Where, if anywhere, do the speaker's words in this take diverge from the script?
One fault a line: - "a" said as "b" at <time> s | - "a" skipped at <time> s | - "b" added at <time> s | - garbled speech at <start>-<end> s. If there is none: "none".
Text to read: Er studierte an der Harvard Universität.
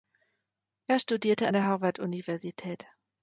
none